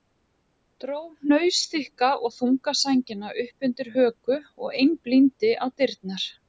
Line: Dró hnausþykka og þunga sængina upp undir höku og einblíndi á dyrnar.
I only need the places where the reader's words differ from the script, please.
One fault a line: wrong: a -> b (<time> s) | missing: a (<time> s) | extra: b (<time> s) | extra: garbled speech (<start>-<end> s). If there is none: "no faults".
no faults